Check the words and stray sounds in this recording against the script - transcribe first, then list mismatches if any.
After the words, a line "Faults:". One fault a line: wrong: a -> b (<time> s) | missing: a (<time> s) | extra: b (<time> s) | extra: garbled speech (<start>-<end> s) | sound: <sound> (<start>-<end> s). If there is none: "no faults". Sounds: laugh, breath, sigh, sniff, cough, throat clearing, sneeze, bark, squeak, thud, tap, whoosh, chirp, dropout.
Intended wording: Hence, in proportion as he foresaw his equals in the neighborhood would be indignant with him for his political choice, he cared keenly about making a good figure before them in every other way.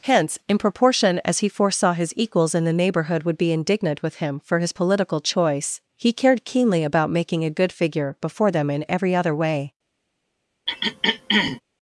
Hence, in proportion as he foresaw his equals in the neighborhood would be indignant with him for his political choice, he cared keenly about making a good figure before them in every other way.
Faults:
sound: throat clearing (10.7-11.6 s)